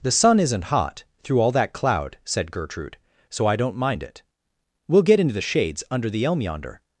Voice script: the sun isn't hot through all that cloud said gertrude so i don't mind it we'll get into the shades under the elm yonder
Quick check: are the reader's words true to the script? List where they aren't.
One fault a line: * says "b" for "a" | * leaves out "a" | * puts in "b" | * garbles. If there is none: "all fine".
all fine